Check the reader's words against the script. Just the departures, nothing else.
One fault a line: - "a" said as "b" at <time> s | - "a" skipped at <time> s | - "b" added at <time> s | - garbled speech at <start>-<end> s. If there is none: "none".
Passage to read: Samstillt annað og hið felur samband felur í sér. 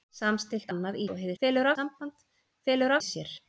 none